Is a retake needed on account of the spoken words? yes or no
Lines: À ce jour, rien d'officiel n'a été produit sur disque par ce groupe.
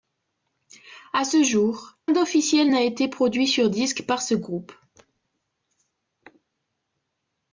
yes